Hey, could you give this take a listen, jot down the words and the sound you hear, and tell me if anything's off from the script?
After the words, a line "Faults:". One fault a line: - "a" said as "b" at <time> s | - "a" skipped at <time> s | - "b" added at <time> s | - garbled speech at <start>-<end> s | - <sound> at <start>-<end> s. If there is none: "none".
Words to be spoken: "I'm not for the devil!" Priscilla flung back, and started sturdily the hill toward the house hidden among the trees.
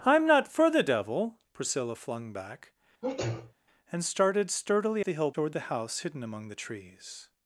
"I'm not for the devil!" Priscilla flung back, and started sturdily the hill toward the house hidden among the trees.
Faults:
- sneeze at 3.0-3.5 s